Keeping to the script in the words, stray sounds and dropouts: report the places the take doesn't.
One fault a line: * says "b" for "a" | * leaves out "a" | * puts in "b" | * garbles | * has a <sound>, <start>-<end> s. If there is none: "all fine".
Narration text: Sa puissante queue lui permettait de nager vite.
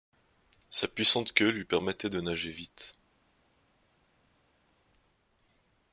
all fine